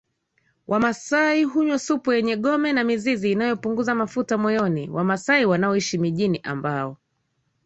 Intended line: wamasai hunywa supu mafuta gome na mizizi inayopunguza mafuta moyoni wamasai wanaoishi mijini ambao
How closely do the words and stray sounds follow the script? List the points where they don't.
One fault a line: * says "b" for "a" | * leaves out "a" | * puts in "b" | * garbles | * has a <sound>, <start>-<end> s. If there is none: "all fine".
* says "yenye" for "mafuta"